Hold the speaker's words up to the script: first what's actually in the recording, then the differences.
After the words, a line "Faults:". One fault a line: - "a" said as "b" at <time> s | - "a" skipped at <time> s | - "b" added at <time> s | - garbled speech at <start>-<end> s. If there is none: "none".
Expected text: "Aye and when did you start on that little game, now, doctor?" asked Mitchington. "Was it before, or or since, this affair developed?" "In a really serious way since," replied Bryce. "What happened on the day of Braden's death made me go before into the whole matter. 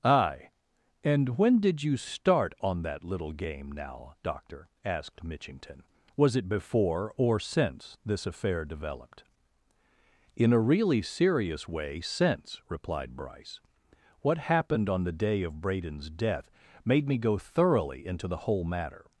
"Aye and when did you start on that little game, now, doctor?" asked Mitchington. "Was it before, or since, this affair developed?" "In a really serious way since," replied Bryce. "What happened on the day of Braden's death made me go thoroughly into the whole matter.
Faults:
- "or" skipped at 7.4 s
- "before" said as "thoroughly" at 17.4 s